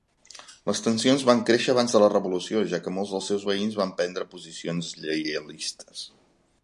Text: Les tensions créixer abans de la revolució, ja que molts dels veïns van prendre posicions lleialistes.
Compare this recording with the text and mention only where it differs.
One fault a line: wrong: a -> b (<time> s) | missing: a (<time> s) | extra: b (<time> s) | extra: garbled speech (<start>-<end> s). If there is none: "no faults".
extra: van (1.3 s)
extra: seus (3.3 s)